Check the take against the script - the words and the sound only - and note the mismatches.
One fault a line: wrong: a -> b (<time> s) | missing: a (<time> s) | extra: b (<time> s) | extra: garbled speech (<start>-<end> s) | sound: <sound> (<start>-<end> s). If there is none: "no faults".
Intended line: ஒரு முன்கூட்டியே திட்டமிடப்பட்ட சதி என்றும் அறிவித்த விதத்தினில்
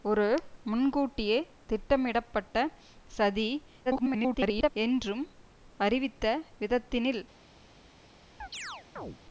extra: garbled speech (3.9-4.7 s)
sound: chirp (8.4-9.2 s)